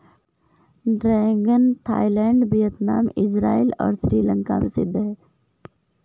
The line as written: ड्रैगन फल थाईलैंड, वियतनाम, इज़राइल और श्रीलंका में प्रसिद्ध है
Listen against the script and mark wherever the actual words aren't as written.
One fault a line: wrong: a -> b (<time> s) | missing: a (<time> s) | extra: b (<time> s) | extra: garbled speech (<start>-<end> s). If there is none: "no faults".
missing: फल (1.7 s)
missing: में (4.6 s)